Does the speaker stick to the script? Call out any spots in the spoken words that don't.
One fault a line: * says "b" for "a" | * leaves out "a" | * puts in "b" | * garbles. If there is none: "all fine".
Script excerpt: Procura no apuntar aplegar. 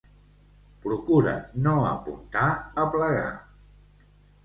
all fine